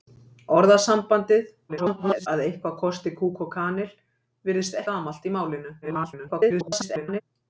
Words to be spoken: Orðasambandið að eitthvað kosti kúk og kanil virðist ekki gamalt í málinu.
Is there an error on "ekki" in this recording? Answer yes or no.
yes